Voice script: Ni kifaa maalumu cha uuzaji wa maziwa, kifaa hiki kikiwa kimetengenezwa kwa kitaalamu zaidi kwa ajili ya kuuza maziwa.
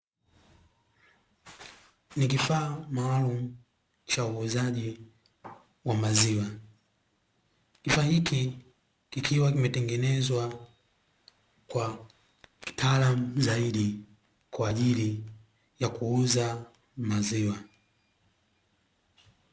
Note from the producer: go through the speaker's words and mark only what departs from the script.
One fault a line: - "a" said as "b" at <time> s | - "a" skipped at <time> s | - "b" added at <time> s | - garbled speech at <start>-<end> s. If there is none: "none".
none